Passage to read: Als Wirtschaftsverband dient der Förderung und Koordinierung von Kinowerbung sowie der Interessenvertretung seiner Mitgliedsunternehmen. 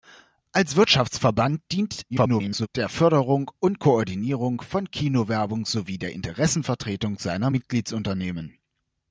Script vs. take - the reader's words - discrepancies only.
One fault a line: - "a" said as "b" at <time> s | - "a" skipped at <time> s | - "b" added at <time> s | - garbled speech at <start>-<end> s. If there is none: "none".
- garbled speech at 2.1-2.7 s